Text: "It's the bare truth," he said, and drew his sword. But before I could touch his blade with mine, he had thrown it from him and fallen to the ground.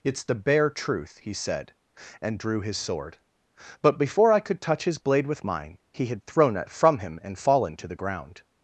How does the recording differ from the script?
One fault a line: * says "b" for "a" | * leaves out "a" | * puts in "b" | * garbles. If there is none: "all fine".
all fine